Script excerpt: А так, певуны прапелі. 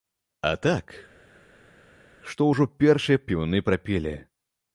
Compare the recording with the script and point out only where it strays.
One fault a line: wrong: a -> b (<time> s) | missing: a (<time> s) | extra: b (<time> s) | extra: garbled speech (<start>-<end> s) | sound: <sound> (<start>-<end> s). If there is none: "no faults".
extra: што ўжо першыя (2.3 s)